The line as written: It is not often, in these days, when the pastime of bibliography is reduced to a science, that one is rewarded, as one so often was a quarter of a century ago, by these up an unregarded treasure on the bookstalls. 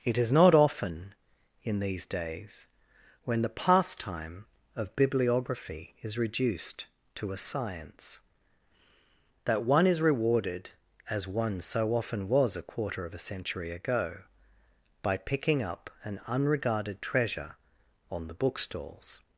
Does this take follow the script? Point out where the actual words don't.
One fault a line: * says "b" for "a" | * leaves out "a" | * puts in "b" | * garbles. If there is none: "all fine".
* says "picking" for "these"